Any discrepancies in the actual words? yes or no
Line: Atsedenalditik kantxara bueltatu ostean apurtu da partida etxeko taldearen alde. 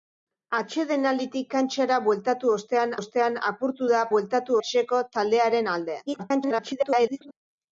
yes